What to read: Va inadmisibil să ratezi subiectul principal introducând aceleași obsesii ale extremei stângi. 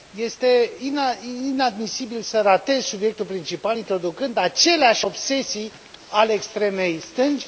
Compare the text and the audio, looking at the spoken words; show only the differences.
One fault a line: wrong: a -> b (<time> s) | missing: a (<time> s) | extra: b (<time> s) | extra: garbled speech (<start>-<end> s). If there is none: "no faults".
wrong: Va -> Este (0.1 s)